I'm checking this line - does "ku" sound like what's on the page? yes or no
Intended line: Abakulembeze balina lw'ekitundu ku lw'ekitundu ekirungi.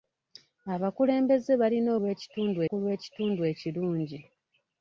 yes